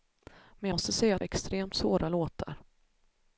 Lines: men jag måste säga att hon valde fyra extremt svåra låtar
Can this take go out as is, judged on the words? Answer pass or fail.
fail